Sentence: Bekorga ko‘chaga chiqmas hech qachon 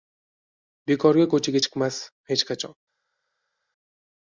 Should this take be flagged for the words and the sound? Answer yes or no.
no